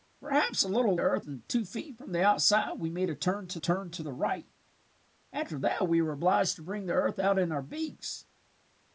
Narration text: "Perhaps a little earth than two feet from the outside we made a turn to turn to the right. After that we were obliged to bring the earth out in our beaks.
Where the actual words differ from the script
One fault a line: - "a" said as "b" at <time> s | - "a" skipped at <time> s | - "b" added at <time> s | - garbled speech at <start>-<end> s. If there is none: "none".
none